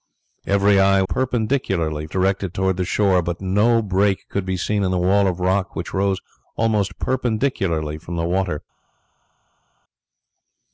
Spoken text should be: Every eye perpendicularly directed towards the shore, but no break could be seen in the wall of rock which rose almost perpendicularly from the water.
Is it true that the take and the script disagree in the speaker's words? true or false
false